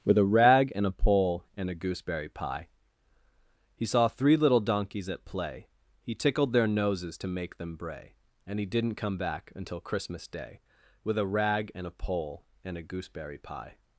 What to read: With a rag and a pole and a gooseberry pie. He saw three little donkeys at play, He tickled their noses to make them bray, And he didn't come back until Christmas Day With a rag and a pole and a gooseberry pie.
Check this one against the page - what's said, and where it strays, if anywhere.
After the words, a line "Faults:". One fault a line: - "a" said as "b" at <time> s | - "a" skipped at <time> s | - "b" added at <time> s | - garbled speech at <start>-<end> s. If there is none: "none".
With a rag and a pole and a gooseberry pie. He saw three little donkeys at play, He tickled their noses to make them bray, And he didn't come back until Christmas Day With a rag and a pole and a gooseberry pie.
Faults:
none